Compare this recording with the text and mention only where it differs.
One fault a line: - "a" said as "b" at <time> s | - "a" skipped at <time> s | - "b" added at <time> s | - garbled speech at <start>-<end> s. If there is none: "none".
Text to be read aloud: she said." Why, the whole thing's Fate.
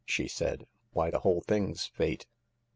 none